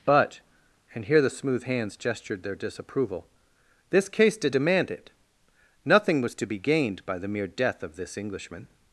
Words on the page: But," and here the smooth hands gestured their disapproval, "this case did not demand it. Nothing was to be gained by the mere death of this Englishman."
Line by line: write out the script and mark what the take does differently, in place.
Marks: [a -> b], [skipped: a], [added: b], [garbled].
But," and here the smooth hands gestured their disapproval, "this case did [skipped: not] demand it. Nothing was to be gained by the mere death of this Englishman."